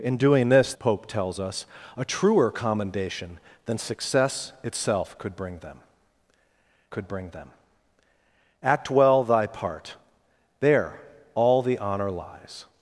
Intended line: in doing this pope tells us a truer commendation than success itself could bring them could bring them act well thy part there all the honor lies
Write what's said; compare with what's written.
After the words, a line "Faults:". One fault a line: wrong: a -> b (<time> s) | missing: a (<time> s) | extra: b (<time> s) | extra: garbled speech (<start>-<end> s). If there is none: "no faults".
in doing this pope tells us a truer commendation than success itself could bring them could bring them act well thy part there all the honor lies
Faults:
no faults